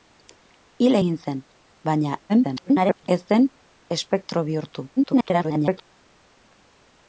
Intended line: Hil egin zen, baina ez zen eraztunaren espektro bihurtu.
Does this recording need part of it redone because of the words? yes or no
yes